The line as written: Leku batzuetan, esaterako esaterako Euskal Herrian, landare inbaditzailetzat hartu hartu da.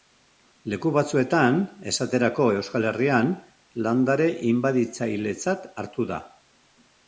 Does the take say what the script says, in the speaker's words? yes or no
no